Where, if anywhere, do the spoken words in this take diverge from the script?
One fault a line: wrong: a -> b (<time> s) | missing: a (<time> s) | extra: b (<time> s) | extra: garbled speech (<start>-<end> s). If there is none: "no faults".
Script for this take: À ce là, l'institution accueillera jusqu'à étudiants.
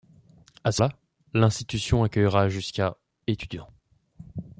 no faults